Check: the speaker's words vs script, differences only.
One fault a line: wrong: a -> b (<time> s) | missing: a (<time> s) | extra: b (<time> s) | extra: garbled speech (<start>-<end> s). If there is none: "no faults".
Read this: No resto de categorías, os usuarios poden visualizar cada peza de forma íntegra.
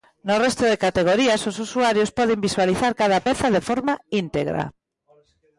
no faults